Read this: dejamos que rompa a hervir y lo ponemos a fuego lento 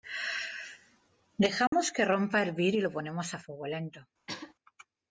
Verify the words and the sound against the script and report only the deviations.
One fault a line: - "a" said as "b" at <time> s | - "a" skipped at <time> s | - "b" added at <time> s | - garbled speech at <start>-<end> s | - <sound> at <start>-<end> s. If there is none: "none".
- dropout at 1.7-1.7 s
- throat clearing at 4.3-4.5 s